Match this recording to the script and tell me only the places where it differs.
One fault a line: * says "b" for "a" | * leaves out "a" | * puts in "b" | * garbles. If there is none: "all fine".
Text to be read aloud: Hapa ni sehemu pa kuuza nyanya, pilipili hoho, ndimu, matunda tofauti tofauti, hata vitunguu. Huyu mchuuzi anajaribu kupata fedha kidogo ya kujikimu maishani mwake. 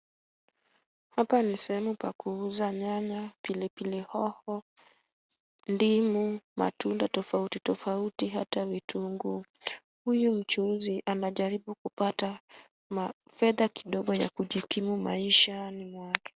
all fine